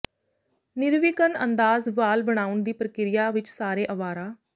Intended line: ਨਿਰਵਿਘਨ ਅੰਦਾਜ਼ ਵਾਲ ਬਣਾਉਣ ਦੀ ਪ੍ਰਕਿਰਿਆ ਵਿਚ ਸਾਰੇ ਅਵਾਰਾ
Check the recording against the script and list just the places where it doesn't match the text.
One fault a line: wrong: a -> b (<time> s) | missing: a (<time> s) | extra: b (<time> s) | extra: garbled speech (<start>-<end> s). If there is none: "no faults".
no faults